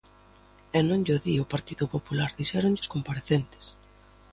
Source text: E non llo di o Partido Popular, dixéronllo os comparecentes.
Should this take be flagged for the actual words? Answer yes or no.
no